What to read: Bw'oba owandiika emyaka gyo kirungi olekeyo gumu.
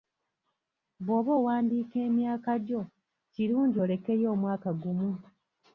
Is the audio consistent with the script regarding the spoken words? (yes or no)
no